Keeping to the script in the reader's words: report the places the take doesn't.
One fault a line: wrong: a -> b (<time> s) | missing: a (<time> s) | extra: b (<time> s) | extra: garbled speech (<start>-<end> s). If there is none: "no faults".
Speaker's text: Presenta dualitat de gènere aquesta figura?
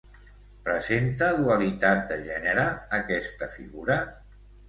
no faults